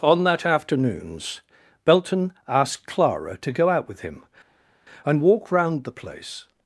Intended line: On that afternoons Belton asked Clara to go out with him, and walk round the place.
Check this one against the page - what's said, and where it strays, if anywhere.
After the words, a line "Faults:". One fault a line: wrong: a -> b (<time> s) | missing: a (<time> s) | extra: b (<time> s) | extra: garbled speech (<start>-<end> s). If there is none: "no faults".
On that afternoons Belton asked Clara to go out with him, and walk round the place.
Faults:
no faults